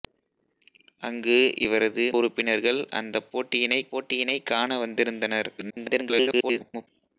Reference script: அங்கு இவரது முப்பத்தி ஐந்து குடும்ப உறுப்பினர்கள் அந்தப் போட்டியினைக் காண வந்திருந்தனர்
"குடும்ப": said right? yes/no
no